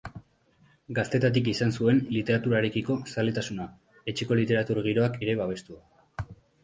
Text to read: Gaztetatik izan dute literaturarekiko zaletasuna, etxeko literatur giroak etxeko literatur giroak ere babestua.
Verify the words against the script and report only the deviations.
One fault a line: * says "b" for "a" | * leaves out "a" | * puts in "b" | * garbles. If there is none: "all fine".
* says "zuen" for "dute"
* leaves out "etxeko literatur giroak"